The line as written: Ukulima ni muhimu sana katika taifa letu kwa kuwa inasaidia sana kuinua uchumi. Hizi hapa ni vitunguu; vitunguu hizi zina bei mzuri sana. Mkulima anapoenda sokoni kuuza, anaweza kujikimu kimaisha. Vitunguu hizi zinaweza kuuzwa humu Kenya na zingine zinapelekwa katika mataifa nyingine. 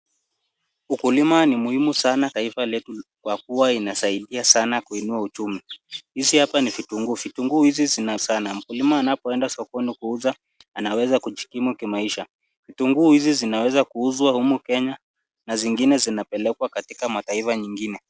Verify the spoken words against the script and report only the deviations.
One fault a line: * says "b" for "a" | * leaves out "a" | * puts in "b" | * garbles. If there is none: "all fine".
* leaves out "katika"
* leaves out "bei mzuri"